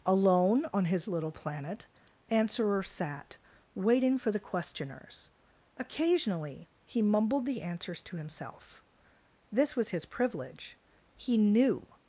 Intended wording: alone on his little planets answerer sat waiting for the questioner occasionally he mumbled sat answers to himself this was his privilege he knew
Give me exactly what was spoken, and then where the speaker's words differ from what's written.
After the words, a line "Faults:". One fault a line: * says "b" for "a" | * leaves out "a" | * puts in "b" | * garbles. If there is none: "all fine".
alone on his little planet answerer sat waiting for the questioners occasionally he mumbled the answers to himself this was his privilege he knew
Faults:
* says "planet" for "planets"
* says "questioners" for "questioner"
* says "the" for "sat"